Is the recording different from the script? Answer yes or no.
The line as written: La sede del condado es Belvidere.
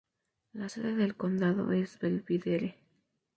no